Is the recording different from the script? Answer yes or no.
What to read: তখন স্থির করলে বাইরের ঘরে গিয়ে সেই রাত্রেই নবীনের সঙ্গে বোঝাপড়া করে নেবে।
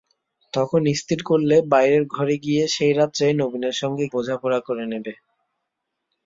no